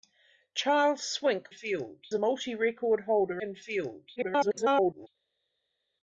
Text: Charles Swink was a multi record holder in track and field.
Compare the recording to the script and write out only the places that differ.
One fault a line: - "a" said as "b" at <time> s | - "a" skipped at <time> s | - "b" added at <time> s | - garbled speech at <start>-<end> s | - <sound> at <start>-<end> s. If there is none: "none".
- "was" said as "field" at 1.5 s
- "in track" skipped at 3.4 s
- garbled speech at 4.2-5.1 s